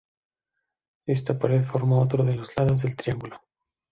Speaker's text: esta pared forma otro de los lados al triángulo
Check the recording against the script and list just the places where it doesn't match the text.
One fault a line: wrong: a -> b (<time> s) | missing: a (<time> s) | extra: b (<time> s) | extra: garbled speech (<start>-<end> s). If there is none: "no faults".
wrong: al -> del (2.8 s)